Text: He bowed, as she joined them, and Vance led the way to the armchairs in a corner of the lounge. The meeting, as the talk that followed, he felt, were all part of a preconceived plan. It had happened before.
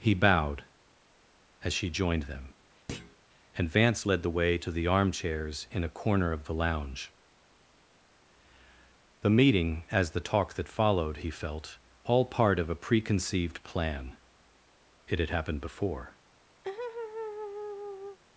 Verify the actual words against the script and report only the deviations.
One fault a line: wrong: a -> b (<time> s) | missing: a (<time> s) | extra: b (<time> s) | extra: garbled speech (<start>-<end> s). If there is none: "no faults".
missing: were (11.8 s)